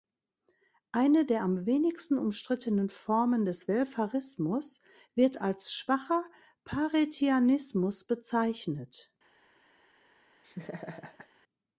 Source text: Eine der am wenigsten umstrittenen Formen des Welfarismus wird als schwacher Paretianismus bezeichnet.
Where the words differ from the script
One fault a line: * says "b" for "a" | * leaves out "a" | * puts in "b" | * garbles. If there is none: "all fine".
all fine